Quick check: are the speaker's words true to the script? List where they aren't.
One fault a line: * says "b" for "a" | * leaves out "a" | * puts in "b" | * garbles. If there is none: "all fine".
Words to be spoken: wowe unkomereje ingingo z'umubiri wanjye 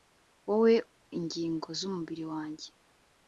* leaves out "unkomereje"